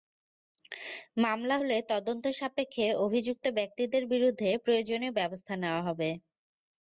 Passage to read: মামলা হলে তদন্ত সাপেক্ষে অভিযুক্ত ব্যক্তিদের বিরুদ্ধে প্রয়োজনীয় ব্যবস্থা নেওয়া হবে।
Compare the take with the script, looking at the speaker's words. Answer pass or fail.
pass